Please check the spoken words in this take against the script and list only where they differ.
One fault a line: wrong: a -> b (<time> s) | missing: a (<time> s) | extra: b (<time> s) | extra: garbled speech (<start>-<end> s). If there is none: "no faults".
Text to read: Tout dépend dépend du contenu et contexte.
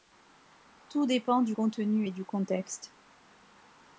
missing: dépend (1.4 s)
extra: du (2.1 s)